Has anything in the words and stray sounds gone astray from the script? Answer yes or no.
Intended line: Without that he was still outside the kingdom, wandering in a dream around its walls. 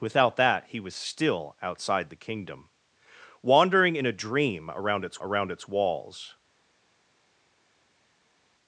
yes